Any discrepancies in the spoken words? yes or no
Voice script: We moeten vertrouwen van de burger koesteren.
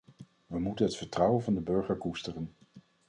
yes